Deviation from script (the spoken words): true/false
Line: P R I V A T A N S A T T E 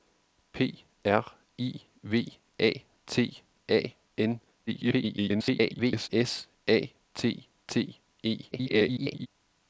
true